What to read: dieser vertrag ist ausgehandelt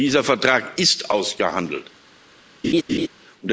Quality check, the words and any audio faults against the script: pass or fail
fail